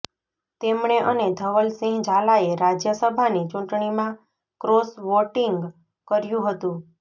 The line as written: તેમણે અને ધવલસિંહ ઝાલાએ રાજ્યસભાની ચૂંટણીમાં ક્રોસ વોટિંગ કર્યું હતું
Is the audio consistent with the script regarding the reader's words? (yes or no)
yes